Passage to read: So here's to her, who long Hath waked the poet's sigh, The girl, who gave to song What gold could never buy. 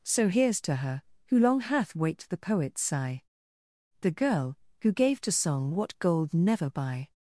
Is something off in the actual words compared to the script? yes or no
yes